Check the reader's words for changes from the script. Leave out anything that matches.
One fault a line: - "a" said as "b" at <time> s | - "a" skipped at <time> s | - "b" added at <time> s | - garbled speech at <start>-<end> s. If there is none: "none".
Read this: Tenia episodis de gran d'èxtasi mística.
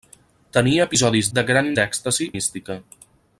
none